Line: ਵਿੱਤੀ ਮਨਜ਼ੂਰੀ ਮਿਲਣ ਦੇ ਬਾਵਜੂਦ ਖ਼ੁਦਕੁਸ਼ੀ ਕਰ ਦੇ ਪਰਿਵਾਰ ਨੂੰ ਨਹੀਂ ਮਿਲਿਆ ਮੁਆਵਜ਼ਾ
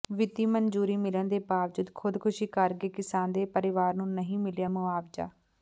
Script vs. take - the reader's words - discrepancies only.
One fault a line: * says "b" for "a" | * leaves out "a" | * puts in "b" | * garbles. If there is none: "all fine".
* puts in "ਗਏ ਕਿਸਾਨ"